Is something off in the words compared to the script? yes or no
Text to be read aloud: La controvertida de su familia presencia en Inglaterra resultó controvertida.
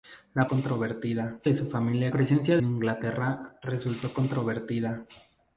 no